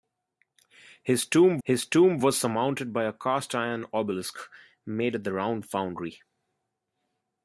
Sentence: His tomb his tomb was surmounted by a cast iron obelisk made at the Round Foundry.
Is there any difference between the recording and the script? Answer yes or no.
no